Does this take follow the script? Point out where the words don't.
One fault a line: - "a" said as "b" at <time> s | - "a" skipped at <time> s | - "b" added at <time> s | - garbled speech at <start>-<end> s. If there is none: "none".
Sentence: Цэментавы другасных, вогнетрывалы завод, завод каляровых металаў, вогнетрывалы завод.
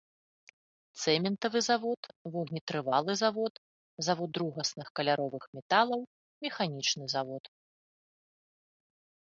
- "другасных" said as "завод" at 1.7 s
- "другасных" added at 4.4 s
- "вогнетрывалы" said as "механічны" at 6.5 s